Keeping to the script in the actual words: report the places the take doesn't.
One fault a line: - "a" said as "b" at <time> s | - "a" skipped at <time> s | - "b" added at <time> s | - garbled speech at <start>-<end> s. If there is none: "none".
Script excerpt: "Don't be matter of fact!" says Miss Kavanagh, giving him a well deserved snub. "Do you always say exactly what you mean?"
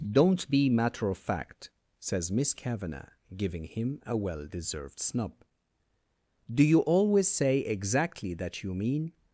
- "what" said as "that" at 8.3 s